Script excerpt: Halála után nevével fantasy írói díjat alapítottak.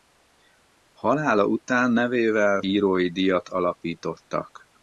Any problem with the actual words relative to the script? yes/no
yes